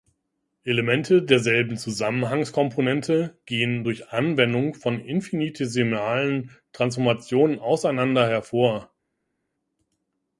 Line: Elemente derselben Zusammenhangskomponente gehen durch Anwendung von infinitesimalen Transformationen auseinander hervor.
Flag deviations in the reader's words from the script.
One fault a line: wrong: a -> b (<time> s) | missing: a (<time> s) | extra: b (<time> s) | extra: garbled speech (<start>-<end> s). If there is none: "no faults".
no faults